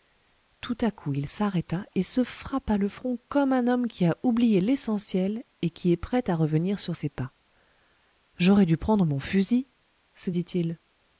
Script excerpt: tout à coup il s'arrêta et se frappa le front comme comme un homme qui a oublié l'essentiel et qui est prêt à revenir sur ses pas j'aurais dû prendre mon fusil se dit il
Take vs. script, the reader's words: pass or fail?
fail